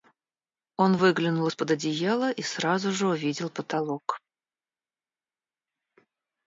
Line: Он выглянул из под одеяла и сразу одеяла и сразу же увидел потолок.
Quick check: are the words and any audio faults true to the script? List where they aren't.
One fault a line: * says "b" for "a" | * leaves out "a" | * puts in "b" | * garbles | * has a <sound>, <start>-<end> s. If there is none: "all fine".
* leaves out "одеяла и сразу"